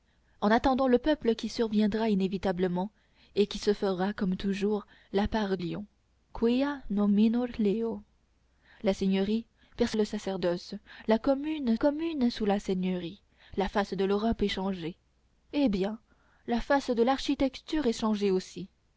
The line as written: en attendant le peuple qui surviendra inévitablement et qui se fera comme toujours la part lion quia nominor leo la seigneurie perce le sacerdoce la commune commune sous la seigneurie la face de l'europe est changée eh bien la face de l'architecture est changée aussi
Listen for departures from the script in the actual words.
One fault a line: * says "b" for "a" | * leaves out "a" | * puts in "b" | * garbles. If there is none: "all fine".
all fine